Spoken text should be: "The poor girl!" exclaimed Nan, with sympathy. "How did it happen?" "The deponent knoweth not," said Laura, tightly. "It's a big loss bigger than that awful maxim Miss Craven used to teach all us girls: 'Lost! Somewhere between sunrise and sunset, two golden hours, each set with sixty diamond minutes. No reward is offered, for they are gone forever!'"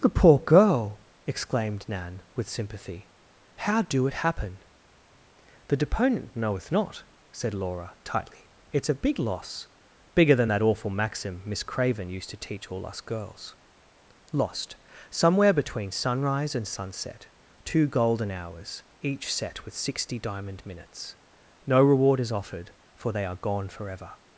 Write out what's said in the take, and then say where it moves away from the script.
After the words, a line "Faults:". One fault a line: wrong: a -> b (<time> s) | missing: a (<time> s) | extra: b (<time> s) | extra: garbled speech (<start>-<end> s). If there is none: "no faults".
"The poor girl!" exclaimed Nan, with sympathy. "How do it happen?" "The deponent knoweth not," said Laura, tightly. "It's a big loss bigger than that awful maxim Miss Craven used to teach all us girls: 'Lost! Somewhere between sunrise and sunset, two golden hours, each set with sixty diamond minutes. No reward is offered, for they are gone forever!'"
Faults:
wrong: did -> do (3.8 s)